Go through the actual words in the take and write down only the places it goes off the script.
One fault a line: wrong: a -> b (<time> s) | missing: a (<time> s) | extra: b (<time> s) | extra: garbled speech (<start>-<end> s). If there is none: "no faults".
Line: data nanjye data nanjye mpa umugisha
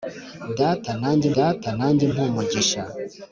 no faults